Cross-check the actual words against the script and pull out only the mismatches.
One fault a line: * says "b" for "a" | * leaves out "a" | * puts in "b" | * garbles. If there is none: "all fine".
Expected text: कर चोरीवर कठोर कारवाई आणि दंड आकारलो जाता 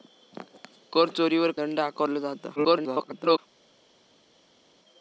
* leaves out "कठोर कारवाई आणि"
* garbles